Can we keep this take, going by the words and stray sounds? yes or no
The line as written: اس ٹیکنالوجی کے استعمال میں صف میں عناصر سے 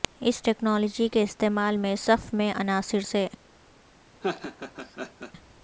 no